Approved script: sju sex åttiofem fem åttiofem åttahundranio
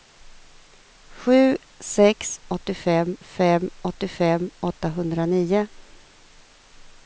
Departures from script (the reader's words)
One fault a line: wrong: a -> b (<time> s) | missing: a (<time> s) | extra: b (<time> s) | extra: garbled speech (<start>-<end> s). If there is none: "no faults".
no faults